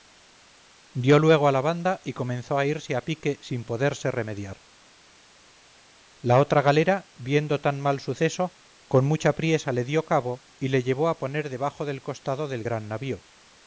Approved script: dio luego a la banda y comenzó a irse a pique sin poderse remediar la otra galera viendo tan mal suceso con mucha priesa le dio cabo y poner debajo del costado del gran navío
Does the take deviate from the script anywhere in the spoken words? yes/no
yes